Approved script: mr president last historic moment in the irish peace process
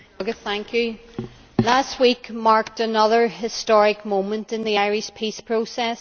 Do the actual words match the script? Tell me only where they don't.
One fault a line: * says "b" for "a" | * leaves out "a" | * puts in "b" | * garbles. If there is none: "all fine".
* puts in "week marked another"